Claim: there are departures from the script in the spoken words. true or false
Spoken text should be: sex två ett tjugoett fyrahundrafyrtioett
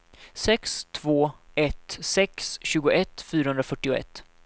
true